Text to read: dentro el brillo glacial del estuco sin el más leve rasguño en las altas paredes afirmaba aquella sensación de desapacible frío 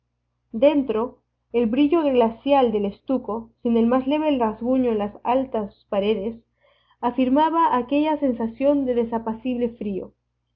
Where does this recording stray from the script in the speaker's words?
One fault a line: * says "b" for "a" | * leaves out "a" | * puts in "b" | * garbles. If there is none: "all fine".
all fine